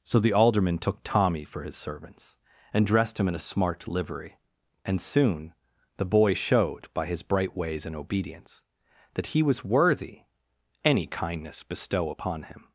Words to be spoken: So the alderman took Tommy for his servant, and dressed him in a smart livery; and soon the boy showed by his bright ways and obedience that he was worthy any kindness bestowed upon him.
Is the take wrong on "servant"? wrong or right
wrong